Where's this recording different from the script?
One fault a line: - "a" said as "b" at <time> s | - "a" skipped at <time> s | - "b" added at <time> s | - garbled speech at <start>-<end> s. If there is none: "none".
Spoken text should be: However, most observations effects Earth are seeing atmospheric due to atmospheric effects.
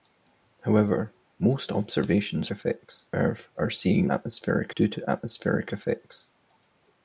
none